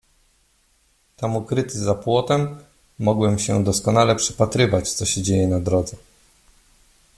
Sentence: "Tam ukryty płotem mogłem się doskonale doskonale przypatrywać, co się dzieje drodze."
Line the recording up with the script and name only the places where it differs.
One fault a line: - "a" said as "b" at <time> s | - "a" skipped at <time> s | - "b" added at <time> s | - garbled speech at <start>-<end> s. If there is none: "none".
- "za" added at 1.8 s
- "doskonale" skipped at 4.2 s
- "na" added at 5.5 s